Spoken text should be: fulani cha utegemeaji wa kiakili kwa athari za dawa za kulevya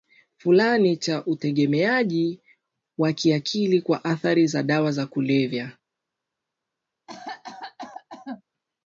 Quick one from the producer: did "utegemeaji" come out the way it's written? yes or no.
yes